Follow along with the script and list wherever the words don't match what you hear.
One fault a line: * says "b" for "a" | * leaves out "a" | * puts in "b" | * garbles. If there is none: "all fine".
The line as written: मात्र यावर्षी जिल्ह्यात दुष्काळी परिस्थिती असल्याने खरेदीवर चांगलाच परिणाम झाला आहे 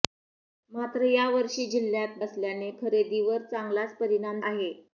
* leaves out "दुष्काळी परिस्थिती"
* leaves out "झाला"